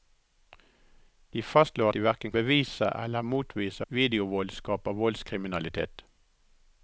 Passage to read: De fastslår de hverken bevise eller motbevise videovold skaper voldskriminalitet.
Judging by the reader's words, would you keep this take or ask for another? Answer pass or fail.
pass